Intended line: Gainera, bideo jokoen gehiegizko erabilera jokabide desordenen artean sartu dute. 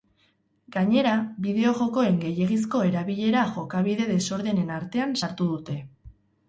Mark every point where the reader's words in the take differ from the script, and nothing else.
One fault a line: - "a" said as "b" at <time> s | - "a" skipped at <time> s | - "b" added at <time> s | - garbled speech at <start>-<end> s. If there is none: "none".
none